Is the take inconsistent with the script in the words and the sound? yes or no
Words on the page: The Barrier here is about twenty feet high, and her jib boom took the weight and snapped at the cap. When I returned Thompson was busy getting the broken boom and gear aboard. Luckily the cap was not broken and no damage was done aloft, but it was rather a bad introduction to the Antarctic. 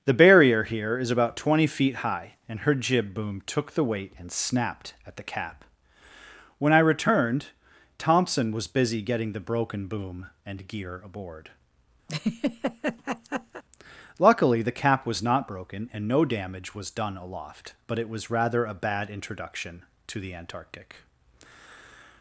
yes